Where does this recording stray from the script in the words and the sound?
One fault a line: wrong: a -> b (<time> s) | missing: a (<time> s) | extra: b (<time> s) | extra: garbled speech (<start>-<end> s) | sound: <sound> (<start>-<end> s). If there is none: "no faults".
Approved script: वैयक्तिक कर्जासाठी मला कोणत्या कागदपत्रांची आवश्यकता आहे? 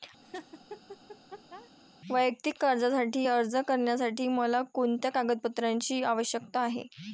sound: laugh (0.2-1.7 s)
extra: अर्ज करण्यासाठी (3.3 s)